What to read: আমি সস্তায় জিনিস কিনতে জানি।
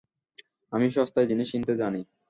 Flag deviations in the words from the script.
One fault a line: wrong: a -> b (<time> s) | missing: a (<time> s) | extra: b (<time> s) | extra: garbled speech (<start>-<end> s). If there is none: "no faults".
no faults